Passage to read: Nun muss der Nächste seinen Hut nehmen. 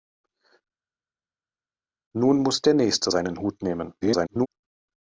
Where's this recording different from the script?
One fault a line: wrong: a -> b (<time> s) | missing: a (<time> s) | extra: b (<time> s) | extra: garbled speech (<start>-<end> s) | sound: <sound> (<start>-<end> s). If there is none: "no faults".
extra: garbled speech (4.0-4.5 s)